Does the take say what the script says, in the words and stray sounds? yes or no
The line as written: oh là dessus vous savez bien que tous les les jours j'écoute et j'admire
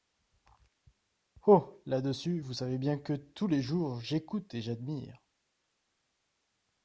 no